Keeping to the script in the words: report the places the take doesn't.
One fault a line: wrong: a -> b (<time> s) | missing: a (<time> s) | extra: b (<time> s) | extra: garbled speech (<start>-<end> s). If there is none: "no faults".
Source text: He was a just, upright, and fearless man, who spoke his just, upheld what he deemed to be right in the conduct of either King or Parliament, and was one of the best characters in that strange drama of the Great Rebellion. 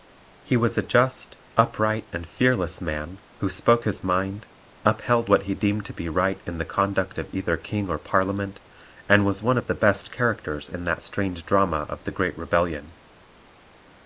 wrong: just -> mind (4.0 s)